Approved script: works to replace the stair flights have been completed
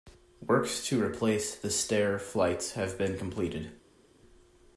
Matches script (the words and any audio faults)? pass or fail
pass